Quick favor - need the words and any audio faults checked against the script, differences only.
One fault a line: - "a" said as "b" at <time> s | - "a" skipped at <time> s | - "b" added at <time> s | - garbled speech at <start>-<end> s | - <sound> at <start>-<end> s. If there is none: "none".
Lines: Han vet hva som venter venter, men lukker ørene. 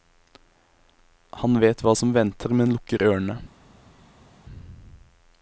- "venter" skipped at 2.5 s